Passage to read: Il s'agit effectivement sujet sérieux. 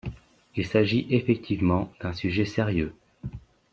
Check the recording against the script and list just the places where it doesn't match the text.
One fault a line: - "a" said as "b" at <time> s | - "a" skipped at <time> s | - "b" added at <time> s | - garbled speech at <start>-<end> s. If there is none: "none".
- "d'un" added at 2.0 s